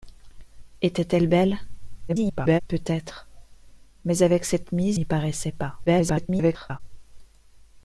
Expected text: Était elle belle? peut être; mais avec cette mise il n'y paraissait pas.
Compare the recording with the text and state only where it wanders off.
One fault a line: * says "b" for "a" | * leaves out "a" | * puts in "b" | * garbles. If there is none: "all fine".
* garbles
* leaves out "il"
* garbles